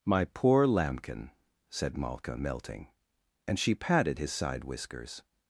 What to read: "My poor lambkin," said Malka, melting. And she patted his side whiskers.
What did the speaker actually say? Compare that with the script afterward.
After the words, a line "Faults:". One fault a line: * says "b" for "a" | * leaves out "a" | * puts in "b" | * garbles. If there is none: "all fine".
"My poor lambkin," said Malka, melting. And she patted his side whiskers.
Faults:
all fine